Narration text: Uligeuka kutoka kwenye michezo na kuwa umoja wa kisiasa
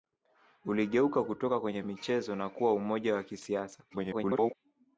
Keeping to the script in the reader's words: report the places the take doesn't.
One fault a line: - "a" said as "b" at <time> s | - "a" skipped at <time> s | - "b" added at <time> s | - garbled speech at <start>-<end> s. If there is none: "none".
- garbled speech at 3.9-4.5 s